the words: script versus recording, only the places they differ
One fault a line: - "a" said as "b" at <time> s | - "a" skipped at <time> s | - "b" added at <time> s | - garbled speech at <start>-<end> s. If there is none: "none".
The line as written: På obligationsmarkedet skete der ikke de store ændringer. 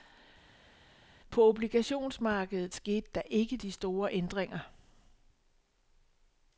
none